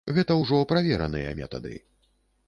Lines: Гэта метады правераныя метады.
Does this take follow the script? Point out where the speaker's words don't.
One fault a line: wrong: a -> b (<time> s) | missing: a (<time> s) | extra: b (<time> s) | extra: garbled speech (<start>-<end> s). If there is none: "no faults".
wrong: метады -> ўжо (0.4 s)